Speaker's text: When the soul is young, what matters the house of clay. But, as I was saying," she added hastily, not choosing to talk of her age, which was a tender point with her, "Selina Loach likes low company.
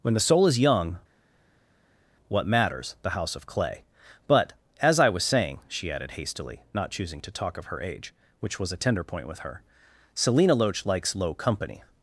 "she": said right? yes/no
yes